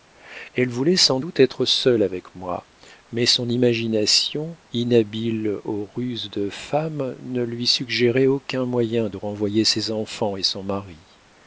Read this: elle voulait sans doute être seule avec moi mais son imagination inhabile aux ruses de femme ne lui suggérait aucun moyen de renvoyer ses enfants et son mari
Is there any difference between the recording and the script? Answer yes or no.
no